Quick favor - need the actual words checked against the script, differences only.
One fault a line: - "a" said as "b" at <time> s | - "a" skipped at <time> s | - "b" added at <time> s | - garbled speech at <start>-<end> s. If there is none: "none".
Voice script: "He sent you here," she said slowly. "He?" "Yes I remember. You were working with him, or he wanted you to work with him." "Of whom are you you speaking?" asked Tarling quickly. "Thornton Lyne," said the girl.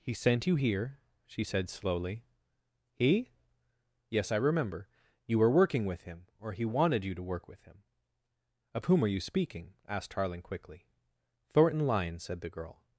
- "you" skipped at 9.2 s